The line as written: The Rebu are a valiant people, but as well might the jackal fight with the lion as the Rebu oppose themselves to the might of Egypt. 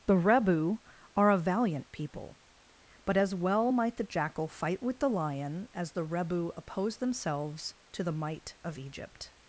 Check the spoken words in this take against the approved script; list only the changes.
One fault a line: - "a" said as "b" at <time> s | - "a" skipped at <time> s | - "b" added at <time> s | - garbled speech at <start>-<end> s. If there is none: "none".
none